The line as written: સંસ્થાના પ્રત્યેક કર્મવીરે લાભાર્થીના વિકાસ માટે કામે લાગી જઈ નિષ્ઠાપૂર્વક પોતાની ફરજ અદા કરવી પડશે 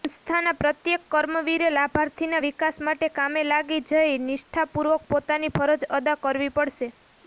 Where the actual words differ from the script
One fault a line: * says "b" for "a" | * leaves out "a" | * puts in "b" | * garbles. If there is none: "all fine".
all fine